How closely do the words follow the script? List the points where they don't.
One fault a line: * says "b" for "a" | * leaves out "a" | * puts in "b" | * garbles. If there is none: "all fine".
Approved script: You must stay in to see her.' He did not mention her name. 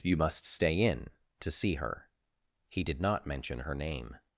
all fine